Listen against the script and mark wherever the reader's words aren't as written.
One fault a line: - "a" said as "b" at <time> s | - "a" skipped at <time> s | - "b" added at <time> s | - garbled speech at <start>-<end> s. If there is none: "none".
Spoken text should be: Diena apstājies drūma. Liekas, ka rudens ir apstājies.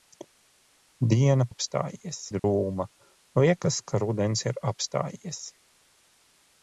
none